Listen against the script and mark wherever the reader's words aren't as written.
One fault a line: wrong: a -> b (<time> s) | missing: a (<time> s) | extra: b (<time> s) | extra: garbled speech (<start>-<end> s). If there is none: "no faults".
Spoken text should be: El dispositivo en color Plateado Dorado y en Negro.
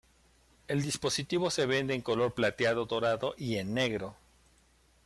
extra: se vende (1.5 s)